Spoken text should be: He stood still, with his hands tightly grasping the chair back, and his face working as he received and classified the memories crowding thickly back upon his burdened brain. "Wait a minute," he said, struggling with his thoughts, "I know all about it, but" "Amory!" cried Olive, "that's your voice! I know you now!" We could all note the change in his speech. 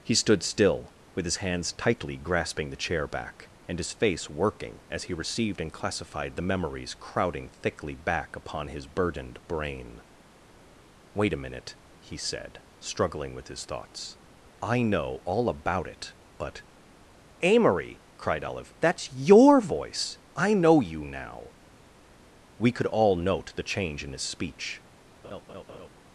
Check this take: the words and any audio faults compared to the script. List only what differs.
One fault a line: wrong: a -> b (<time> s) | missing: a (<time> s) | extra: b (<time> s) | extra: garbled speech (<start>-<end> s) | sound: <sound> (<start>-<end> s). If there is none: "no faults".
sound: laugh (25.2-25.9 s)